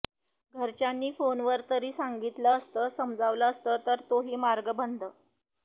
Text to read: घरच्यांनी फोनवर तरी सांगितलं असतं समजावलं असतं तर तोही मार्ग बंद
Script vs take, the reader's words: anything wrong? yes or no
no